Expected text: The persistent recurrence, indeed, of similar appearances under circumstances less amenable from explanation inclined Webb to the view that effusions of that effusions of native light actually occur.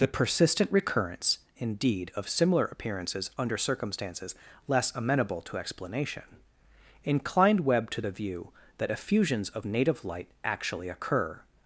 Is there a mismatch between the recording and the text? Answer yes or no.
yes